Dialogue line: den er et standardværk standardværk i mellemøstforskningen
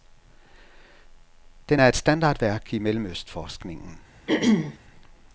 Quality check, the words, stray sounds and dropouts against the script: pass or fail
fail